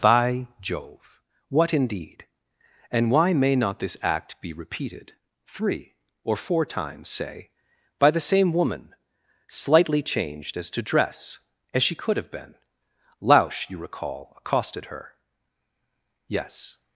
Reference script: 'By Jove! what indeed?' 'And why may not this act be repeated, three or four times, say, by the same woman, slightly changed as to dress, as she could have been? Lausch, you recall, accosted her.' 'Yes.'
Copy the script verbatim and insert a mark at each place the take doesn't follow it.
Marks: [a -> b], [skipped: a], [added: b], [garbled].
'By Jove! what indeed?' 'And why may not this act be repeated, three or four times, say, by the same woman, slightly changed as to dress, as she could have been? Lausch, you recall, accosted her.' 'Yes.'